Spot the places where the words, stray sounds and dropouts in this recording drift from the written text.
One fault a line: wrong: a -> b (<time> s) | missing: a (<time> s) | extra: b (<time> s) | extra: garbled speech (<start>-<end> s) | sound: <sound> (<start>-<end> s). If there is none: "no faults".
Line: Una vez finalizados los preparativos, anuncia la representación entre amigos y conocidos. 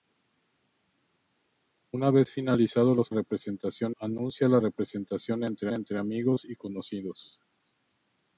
wrong: preparativos -> representación (3.1 s)
extra: entre (5.7 s)